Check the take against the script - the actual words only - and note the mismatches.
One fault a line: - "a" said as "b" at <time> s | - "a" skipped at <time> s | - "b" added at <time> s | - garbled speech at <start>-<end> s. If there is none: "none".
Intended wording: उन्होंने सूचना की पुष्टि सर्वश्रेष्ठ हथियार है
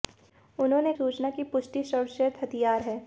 none